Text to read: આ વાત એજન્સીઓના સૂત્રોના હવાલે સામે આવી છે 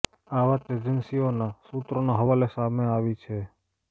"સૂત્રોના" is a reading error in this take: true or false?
false